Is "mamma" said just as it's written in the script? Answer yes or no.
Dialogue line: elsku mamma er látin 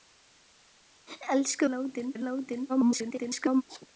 no